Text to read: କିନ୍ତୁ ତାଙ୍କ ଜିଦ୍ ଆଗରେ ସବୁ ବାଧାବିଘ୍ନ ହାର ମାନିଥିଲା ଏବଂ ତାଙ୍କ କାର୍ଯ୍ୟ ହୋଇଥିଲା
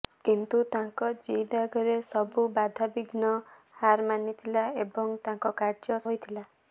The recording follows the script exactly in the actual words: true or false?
true